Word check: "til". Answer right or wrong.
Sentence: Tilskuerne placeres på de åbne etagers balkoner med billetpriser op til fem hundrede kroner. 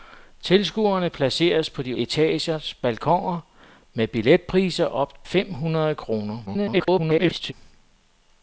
wrong